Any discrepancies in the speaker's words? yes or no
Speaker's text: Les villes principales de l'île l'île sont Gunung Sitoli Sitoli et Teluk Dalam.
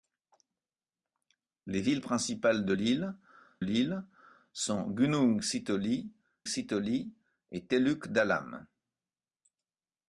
no